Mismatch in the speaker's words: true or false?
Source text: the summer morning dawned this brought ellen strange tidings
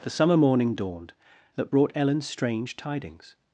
true